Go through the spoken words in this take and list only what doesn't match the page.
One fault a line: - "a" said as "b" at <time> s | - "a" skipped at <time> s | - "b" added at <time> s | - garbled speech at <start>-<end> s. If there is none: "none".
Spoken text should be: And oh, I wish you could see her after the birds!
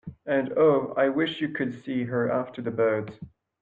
none